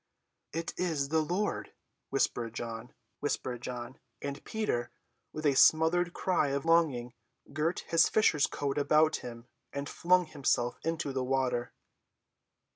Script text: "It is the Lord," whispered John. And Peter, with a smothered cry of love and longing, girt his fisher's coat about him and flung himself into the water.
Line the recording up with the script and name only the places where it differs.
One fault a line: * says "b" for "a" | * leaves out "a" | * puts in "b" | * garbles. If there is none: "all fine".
* puts in "whispered John"
* leaves out "love and"